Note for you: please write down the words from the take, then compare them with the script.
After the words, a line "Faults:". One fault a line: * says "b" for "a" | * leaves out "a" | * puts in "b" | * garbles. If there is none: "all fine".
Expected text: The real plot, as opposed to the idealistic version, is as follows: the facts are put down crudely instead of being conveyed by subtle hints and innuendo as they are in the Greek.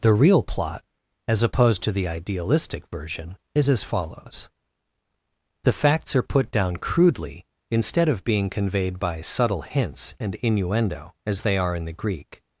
The real plot, as opposed to the idealistic version, is as follows: the facts are put down crudely instead of being conveyed by subtle hints and innuendo as they are in the Greek.
Faults:
all fine